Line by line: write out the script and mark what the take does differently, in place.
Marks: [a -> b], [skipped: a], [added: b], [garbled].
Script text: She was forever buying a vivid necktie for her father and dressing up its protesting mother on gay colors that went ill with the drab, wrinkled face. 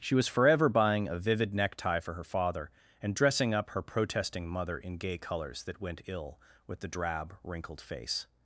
She was forever buying a vivid necktie for her father and dressing up [its -> her] protesting mother [on -> in] gay colors that went ill with the drab, wrinkled face.